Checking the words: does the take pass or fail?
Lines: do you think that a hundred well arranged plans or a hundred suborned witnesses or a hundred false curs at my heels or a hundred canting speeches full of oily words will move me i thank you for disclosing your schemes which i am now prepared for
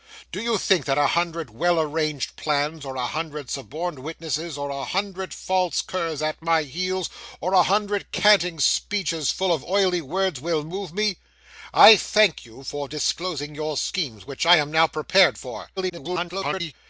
fail